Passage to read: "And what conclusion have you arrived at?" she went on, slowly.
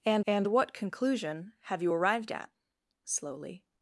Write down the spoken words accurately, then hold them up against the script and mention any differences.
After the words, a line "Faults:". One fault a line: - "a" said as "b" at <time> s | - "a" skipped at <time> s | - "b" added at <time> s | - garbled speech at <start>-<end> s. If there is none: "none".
"And and what conclusion have you arrived at?" slowly.
Faults:
- "and" added at 0.2 s
- "she went on" skipped at 2.5 s